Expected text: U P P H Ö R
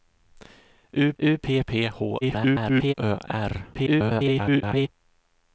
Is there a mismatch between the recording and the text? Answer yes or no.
yes